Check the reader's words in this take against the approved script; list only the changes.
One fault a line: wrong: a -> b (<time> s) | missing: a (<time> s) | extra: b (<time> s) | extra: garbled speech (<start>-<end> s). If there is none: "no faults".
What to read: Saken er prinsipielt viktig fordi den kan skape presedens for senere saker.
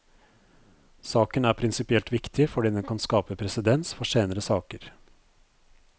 no faults